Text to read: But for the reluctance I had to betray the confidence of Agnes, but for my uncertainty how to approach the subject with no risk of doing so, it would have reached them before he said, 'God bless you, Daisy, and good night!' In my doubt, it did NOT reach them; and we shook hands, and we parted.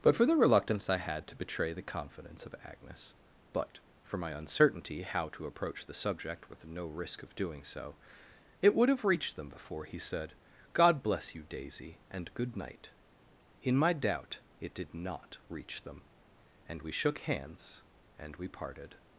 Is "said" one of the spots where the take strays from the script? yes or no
no